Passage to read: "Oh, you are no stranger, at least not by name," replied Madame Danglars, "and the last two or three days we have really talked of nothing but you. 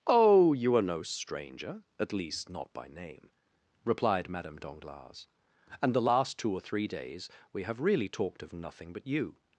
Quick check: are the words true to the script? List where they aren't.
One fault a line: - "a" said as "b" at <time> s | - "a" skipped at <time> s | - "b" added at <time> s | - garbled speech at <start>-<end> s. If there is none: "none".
none